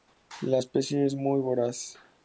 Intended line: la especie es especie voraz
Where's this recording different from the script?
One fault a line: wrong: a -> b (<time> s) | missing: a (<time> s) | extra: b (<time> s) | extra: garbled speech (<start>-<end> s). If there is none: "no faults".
wrong: especie -> muy (1.1 s)